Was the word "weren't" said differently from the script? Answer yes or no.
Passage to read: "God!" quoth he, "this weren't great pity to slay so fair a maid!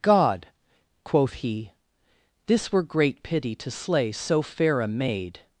yes